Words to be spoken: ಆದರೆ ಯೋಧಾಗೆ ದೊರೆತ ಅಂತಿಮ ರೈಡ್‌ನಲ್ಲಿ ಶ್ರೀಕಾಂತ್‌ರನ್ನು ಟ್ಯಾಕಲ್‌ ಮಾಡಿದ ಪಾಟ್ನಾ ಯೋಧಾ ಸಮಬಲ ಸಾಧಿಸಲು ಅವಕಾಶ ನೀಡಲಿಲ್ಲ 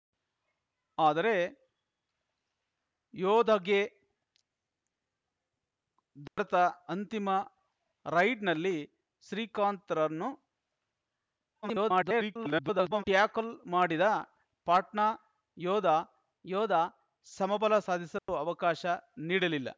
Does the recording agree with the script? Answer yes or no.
no